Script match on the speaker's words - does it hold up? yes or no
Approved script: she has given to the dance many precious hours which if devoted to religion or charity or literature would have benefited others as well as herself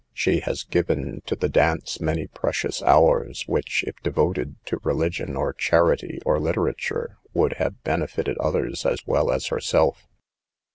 yes